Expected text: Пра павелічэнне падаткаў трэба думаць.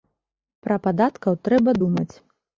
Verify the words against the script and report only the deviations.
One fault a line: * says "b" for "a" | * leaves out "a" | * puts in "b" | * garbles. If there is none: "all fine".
* leaves out "павелічэнне"